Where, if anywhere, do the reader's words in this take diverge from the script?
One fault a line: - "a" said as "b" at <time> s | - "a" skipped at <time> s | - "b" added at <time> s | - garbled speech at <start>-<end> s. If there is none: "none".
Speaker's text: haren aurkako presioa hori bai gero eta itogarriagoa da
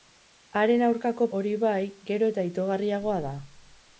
- "presioa" skipped at 1.3 s